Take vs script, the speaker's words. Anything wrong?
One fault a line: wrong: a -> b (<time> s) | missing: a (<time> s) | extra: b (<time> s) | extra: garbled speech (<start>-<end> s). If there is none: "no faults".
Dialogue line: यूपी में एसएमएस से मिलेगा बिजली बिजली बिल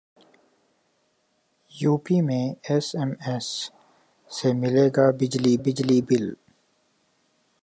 no faults